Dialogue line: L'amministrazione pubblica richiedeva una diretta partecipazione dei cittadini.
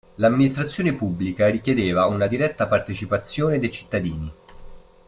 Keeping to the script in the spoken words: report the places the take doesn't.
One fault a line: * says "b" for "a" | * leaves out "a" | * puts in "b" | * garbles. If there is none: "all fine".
all fine